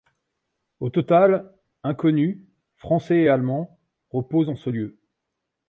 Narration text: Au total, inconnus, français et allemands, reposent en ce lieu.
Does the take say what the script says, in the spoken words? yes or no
yes